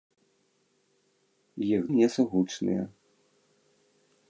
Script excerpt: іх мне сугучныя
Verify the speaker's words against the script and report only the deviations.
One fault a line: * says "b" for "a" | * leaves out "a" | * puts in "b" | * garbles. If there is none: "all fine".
all fine